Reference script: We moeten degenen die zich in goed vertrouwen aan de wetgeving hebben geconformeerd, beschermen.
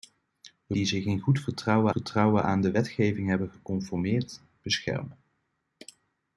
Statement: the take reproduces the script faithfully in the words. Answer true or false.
false